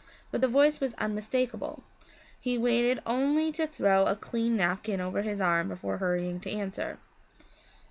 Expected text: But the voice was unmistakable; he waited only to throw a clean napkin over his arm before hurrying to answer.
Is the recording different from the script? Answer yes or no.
no